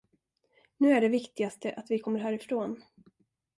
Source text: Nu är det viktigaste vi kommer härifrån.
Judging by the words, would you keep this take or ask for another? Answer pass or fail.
fail